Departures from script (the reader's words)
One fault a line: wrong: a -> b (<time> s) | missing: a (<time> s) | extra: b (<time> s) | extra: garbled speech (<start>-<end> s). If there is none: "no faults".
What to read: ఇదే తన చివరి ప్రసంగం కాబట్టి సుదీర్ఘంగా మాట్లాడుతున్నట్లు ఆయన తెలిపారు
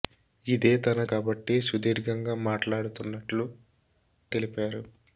missing: చివరి ప్రసంగం (1.0 s)
missing: ఆయన (3.5 s)